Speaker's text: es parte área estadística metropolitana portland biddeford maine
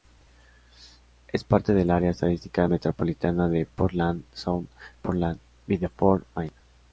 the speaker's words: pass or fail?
fail